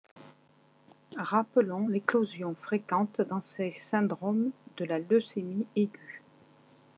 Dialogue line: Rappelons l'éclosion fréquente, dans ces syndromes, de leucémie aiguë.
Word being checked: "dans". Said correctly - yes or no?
yes